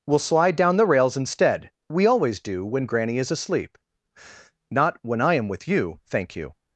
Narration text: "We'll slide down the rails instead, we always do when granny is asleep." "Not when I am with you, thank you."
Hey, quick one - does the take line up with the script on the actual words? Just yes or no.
yes